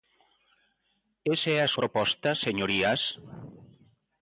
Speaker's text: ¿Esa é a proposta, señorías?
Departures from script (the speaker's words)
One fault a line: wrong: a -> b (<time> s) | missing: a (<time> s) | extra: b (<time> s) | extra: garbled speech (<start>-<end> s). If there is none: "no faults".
no faults